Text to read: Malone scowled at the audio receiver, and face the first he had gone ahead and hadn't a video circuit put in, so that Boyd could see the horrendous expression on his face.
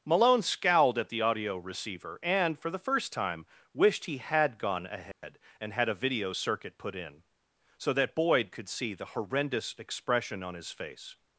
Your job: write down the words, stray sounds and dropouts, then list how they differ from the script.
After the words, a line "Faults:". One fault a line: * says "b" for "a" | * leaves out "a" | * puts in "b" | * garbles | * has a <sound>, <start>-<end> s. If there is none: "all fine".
Malone scowled at the audio receiver, and for the first time wished he had gone ahead and had a video circuit put in, so that Boyd could see the horrendous expression on his face.
Faults:
* says "for" for "face"
* puts in "time wished"
* has a dropout, 5.1-5.2 s
* says "had" for "hadn't"